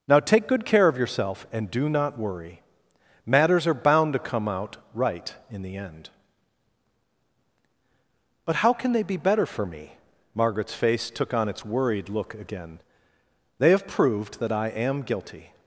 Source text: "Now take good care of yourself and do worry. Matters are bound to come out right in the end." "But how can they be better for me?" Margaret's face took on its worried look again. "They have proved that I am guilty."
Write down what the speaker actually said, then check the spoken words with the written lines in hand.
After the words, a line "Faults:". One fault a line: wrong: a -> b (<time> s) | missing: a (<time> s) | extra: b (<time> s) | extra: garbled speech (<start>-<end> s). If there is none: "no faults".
"Now take good care of yourself and do not worry. Matters are bound to come out right in the end." "But how can they be better for me?" Margaret's face took on its worried look again. "They have proved that I am guilty."
Faults:
extra: not (1.9 s)